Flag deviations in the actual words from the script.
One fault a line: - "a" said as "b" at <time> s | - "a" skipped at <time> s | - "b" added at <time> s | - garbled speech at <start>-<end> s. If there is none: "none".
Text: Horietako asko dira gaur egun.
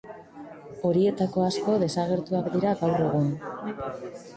- "desagertuak" added at 1.9 s